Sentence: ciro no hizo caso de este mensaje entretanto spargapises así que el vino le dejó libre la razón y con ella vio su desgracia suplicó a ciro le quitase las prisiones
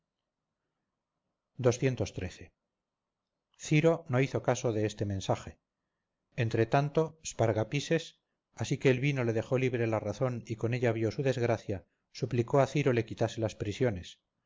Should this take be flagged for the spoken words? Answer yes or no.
no